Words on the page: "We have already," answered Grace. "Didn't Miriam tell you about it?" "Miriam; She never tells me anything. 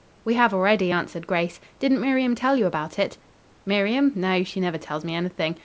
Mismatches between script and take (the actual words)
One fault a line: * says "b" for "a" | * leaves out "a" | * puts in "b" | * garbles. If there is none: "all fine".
* puts in "No"